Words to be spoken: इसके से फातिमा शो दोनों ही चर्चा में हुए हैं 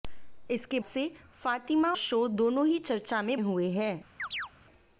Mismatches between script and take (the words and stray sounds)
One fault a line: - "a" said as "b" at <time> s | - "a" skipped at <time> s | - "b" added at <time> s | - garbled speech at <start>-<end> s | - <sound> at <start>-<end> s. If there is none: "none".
- chirp at 4.2-4.5 s